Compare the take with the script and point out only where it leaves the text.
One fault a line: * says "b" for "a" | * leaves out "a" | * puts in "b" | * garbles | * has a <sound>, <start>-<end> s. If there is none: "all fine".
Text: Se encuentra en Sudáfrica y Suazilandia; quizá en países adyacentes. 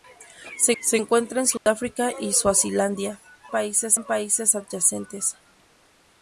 * puts in "se"
* has a dropout, 1.6-1.7 s
* says "países" for "quizá"